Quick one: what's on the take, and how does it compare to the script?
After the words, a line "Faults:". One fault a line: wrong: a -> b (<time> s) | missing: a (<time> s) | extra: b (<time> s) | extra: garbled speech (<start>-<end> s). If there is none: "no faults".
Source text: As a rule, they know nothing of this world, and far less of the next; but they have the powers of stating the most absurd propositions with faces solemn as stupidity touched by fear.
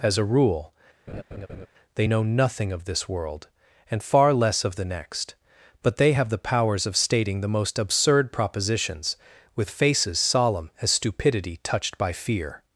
As a rule, they know nothing of this world, and far less of the next; but they have the powers of stating the most absurd propositions with faces solemn as stupidity touched by fear.
Faults:
no faults